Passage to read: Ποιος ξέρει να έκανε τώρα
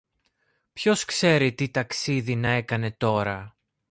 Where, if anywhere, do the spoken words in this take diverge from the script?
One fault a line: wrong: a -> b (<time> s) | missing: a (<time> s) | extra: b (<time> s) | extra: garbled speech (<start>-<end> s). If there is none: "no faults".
extra: τι ταξίδι (1.5 s)